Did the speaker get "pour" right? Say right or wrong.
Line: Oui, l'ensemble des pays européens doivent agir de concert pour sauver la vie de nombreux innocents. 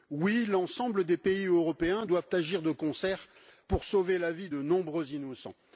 right